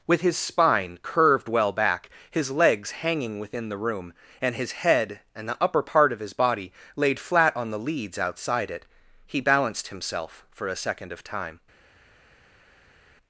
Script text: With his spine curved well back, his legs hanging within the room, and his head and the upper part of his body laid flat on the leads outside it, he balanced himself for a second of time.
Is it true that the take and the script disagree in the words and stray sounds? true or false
false